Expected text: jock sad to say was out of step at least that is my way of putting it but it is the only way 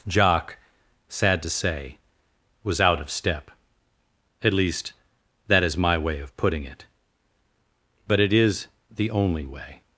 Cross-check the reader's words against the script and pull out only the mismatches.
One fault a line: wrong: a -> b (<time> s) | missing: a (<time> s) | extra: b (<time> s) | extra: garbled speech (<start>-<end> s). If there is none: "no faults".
no faults